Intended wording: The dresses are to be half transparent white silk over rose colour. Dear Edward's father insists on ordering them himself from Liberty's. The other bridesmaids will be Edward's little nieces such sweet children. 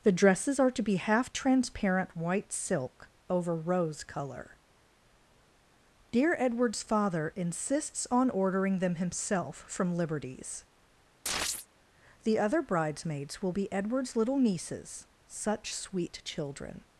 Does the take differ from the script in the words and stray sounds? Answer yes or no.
yes